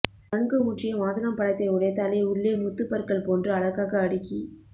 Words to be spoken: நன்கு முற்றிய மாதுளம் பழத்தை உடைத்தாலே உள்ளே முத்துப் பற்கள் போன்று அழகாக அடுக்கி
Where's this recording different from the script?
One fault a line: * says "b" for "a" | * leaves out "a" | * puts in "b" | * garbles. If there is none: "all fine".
all fine